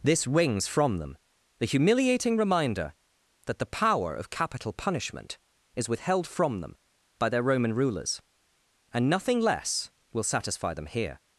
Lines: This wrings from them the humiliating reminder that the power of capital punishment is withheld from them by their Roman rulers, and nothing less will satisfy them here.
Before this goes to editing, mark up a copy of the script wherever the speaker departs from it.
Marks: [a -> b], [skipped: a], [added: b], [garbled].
This wrings from them the humiliating reminder that the power of capital punishment is withheld from them by their Roman rulers, and nothing less will satisfy them here.